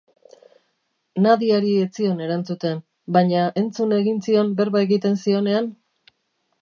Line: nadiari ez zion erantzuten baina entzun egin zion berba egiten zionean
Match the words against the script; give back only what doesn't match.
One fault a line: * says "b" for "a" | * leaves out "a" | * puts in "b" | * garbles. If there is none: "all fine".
all fine